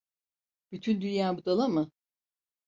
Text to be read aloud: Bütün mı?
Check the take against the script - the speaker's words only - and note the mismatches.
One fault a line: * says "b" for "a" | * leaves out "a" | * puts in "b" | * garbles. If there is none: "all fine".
* puts in "dünya budala"